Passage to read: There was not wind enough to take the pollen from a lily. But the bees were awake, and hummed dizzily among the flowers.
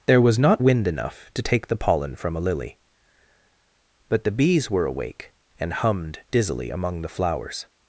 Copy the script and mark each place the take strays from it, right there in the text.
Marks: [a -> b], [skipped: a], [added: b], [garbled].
There was not wind enough to take the pollen from a lily. But the bees were awake, and hummed dizzily among the flowers.